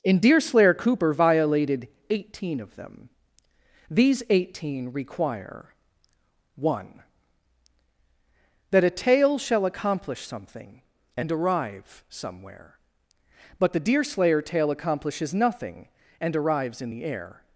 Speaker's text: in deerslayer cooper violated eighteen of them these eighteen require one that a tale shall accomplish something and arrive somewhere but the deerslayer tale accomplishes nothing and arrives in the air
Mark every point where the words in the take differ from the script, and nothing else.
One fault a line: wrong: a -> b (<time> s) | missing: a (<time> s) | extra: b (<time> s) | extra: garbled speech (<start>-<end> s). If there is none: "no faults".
no faults